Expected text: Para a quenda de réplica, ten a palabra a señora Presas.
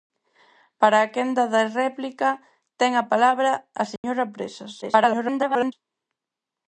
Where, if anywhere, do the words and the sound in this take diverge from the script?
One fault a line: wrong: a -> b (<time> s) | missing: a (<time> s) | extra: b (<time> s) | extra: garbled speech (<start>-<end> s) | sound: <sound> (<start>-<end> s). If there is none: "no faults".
sound: dropout (4.0-4.0 s)
extra: garbled speech (4.8-5.7 s)